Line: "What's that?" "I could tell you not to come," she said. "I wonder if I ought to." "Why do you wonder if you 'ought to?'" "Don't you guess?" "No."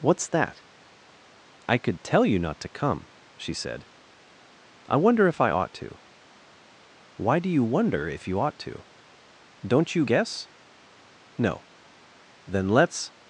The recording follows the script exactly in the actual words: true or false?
false